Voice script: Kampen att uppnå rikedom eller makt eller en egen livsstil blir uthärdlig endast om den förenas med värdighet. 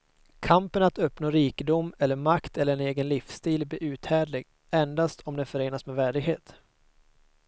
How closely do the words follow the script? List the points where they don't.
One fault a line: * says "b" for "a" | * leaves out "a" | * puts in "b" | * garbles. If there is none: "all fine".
all fine